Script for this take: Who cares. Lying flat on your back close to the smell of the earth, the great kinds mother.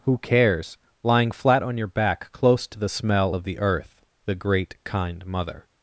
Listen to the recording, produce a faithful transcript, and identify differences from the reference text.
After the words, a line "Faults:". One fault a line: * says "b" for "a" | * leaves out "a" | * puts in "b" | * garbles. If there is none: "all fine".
Who cares. Lying flat on your back close to the smell of the earth, the great kind mother.
Faults:
* says "kind" for "kinds"